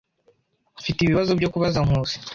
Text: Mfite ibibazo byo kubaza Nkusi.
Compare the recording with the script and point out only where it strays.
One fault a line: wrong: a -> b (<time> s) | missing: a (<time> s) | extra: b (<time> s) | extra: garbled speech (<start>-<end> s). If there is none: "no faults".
no faults